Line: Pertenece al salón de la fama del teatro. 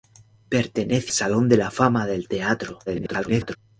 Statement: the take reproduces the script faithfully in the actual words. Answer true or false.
false